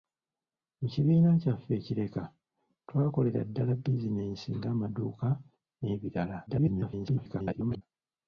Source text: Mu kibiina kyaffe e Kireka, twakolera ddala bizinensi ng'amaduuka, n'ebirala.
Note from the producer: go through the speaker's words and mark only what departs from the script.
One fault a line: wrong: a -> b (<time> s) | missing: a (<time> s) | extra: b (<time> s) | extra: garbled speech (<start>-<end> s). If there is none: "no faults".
extra: garbled speech (6.5-7.8 s)